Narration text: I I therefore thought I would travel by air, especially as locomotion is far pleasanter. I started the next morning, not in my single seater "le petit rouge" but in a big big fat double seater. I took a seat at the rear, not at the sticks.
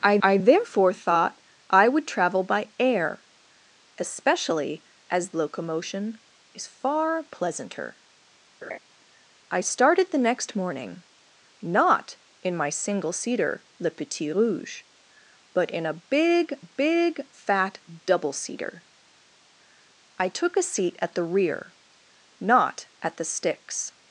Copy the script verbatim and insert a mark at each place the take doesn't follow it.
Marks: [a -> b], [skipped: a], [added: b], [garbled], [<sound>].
I I therefore thought I would travel by air, especially as locomotion is far pleasanter. [laugh] I started the next morning, not in my single seater "le petit rouge" but in a big big fat double seater. I took a seat at the rear, not at the sticks.